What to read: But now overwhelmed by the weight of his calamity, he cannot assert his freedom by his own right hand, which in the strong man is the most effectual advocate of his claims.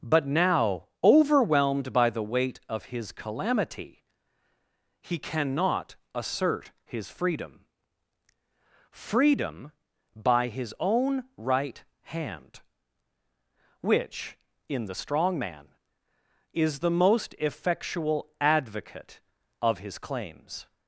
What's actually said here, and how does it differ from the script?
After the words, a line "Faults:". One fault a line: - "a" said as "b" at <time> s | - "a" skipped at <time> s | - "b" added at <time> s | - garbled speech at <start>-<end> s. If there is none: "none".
But now overwhelmed by the weight of his calamity, he cannot assert his freedom freedom by his own right hand, which in the strong man is the most effectual advocate of his claims.
Faults:
- "freedom" added at 8.9 s